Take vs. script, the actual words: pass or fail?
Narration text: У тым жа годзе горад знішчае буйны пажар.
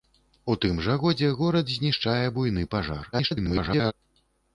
fail